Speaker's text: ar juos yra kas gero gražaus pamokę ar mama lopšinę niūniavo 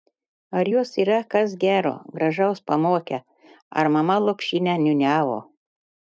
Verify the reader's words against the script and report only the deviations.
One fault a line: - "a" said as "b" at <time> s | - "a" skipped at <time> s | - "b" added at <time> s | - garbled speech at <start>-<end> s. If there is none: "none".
none